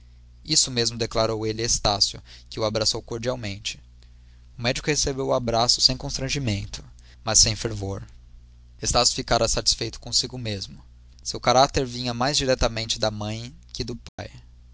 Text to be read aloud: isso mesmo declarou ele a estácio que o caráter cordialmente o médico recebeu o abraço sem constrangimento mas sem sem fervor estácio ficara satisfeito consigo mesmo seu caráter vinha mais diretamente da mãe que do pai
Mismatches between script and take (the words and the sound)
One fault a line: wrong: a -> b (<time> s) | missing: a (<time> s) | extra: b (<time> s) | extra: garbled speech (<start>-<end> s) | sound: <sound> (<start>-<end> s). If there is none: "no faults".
wrong: caráter -> abraçou (2.6 s)
missing: sem (7.5 s)
sound: dropout (14.1-14.2 s)